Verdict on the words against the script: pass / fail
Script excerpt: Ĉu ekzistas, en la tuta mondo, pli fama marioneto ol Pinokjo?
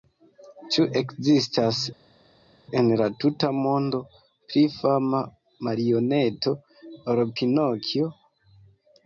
pass